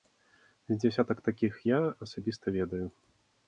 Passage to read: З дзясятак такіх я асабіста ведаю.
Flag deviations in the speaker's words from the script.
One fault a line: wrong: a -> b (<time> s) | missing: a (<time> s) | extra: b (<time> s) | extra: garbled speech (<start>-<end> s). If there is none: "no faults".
no faults